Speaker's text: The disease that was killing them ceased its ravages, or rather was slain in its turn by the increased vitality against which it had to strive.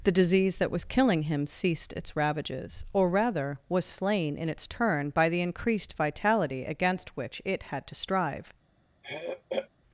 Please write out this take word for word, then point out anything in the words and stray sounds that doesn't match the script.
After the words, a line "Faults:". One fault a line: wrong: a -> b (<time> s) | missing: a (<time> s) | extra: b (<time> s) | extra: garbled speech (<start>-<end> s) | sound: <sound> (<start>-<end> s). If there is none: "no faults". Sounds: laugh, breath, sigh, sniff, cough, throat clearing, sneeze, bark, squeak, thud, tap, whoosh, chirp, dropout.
The disease that was killing him ceased its ravages, or rather was slain in its turn by the increased vitality against which it had to strive.
Faults:
wrong: them -> him (1.2 s)
sound: throat clearing (9.0-9.7 s)